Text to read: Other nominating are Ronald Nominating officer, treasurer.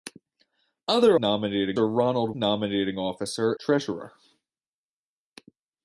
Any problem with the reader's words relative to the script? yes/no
no